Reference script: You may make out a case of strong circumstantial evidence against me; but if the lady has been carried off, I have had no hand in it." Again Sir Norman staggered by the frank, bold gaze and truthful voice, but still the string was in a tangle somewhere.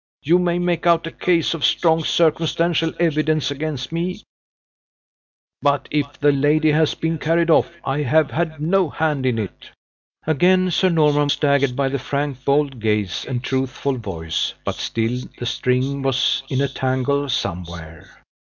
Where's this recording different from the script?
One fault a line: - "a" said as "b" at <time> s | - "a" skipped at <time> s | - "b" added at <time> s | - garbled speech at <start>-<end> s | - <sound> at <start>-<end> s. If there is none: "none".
none